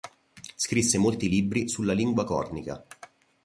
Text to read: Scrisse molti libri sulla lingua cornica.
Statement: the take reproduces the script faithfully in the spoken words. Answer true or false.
true